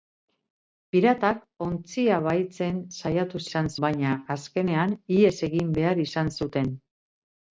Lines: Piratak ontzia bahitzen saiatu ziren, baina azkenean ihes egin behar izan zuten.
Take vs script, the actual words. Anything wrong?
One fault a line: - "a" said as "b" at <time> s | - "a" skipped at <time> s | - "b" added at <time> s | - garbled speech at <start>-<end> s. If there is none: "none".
- "ziren" said as "izan" at 3.5 s